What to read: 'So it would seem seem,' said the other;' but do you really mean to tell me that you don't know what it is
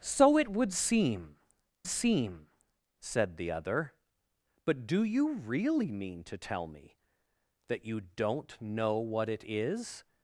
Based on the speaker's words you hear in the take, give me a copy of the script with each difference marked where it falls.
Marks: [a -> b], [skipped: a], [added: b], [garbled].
'So it would seem seem,' said the other;' but do you really mean to tell me that you don't know what it is